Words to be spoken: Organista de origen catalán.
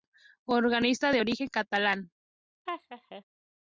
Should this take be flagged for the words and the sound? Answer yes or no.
yes